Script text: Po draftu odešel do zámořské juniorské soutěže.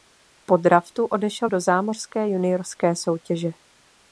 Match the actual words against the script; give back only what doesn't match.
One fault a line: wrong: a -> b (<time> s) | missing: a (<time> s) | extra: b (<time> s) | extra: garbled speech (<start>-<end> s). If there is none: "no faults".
no faults